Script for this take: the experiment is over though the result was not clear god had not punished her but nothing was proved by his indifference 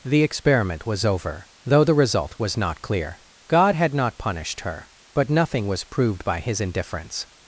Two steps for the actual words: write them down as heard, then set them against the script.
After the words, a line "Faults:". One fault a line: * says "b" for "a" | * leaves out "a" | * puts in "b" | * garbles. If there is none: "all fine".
the experiment was over though the result was not clear god had not punished her but nothing was proved by his indifference
Faults:
* says "was" for "is"